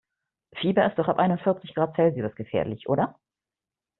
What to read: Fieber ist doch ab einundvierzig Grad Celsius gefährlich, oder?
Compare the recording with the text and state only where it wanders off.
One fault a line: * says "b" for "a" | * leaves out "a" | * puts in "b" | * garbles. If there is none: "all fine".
all fine